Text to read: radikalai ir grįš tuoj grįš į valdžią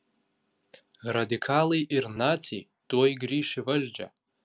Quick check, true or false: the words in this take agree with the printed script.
false